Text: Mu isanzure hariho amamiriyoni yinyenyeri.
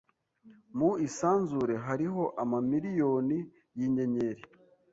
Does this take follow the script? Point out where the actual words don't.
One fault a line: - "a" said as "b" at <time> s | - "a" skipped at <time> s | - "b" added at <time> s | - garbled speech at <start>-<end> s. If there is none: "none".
none